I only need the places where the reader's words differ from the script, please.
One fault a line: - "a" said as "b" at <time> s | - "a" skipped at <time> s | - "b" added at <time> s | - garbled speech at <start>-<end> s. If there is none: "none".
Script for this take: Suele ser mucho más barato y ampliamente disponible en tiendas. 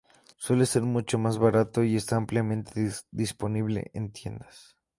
- "está" added at 1.9 s